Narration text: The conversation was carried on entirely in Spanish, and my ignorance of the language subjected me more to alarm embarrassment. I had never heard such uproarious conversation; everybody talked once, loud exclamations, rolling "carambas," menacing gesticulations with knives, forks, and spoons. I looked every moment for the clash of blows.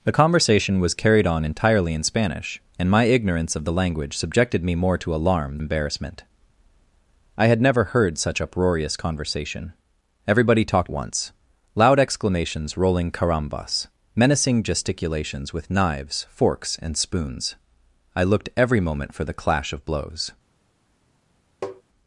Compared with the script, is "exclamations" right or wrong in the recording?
right